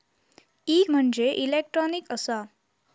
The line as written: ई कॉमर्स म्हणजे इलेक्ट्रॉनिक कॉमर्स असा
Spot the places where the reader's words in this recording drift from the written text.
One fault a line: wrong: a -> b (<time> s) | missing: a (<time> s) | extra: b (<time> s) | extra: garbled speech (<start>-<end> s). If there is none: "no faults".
missing: कॉमर्स (0.8 s)
missing: कॉमर्स (2.1 s)